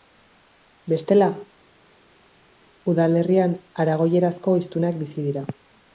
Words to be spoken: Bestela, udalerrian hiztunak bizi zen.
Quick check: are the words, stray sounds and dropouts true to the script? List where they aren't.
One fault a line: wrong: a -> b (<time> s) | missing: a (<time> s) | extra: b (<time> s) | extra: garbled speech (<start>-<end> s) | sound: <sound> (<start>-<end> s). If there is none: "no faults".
extra: aragoierazko (3.9 s)
wrong: zen -> dira (5.3 s)